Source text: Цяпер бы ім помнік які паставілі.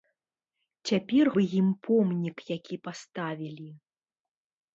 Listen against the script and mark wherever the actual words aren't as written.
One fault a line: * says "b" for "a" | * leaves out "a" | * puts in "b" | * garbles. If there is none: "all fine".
all fine